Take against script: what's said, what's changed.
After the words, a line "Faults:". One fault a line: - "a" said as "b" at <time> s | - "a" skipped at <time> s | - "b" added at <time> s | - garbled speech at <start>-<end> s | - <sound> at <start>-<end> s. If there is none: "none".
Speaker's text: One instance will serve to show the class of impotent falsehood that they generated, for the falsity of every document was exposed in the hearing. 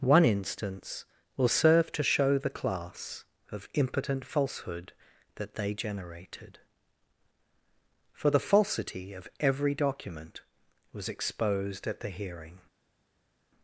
One instance will serve to show the class of impotent falsehood that they generated, for the falsity of every document was exposed at the hearing.
Faults:
- "in" said as "at" at 11.8 s